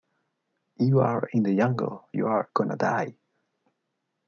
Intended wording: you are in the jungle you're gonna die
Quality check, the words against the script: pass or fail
pass